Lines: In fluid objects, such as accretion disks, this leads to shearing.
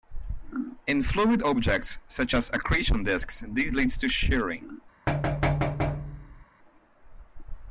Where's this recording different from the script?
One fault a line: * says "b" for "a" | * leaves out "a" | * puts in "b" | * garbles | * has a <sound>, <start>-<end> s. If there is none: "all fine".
* has a thud, 5.1-6.5 s